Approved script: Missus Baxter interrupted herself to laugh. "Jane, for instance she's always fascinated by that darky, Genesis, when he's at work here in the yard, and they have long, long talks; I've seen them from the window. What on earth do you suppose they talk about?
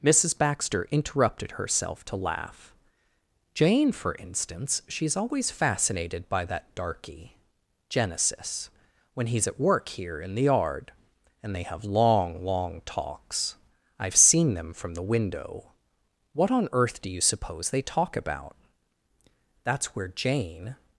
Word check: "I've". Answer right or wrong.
right